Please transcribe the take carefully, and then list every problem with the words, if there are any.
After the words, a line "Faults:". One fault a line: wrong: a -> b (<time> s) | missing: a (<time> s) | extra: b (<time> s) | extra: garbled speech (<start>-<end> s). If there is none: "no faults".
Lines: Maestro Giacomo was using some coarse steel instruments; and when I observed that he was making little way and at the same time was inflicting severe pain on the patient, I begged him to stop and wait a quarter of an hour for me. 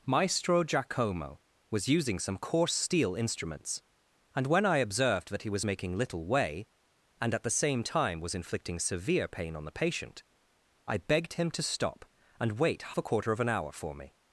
Maestro Giacomo was using some coarse steel instruments; and when I observed that he was making little way and at the same time was inflicting severe pain on the patient, I begged him to stop and wait a quarter of an hour for me.
Faults:
no faults